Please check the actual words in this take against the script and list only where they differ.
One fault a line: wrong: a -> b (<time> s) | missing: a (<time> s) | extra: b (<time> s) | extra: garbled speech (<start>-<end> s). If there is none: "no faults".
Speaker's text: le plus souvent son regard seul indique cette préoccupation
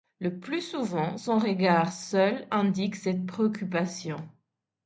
no faults